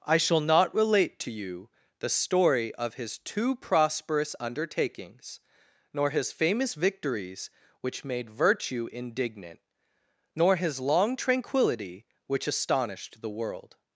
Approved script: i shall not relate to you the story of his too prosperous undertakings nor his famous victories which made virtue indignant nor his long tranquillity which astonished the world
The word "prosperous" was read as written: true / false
true